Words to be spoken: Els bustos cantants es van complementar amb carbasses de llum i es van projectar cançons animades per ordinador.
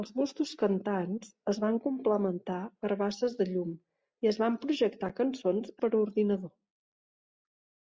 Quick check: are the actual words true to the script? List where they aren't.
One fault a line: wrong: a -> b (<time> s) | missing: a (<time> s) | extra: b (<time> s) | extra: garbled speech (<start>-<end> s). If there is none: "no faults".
missing: amb (2.6 s)
missing: animades (5.7 s)